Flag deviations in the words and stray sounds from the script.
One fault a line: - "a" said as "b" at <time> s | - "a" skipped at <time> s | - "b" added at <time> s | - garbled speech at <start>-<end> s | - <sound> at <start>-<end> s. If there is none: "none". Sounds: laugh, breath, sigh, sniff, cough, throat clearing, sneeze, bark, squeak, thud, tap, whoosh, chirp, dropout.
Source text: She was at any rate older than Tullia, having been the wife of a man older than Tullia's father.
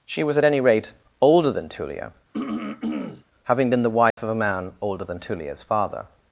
- throat clearing at 2.3-3.2 s
- dropout at 4.1-4.2 s